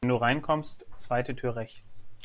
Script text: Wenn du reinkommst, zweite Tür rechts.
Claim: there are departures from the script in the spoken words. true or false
false